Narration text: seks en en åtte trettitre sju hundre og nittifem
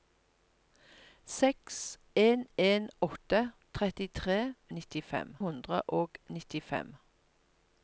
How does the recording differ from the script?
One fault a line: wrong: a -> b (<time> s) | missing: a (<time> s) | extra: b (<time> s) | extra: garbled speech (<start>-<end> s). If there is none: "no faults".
wrong: sju -> nittifem (4.8 s)